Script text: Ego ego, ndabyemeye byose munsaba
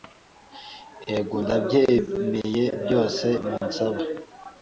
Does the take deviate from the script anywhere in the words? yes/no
yes